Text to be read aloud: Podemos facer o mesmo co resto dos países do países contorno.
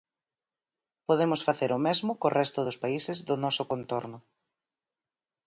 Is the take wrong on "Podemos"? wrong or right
right